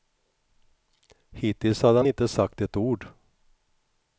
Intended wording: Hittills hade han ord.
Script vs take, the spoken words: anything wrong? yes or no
yes